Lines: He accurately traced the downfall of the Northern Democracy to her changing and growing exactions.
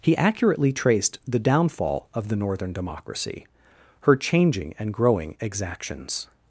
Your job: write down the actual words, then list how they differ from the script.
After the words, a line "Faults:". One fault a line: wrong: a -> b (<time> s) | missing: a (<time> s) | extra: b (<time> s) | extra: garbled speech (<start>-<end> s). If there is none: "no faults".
He accurately traced the downfall of the Northern Democracy her changing and growing exactions.
Faults:
missing: to (3.5 s)